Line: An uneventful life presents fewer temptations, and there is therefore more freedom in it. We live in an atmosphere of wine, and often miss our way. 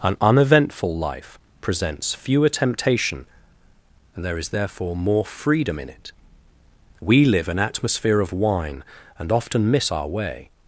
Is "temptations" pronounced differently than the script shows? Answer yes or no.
yes